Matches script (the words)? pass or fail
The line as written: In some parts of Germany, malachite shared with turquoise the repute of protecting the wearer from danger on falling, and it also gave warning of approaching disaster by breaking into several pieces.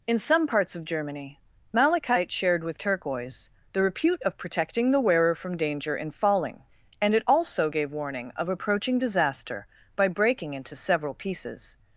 fail